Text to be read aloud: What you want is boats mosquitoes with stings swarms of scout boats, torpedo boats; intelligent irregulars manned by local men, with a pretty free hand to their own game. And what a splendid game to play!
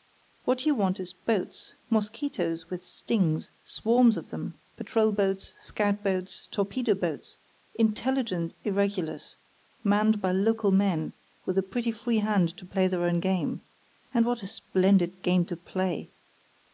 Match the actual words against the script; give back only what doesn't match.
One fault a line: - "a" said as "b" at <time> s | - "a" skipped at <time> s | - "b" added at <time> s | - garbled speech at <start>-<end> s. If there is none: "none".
- "them patrol boats" added at 4.3 s
- "play" added at 12.6 s